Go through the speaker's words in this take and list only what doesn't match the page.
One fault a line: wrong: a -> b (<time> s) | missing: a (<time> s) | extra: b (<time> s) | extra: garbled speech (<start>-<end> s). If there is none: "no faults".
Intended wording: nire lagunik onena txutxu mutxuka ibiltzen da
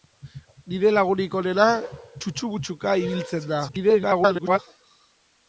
extra: garbled speech (3.7-4.6 s)